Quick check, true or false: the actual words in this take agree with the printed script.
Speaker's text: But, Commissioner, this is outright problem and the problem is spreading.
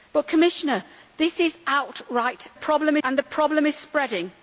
true